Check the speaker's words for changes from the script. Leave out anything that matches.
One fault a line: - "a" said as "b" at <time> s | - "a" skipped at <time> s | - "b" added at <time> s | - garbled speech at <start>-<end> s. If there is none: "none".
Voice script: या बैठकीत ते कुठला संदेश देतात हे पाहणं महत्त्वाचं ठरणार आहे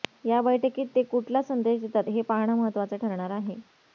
none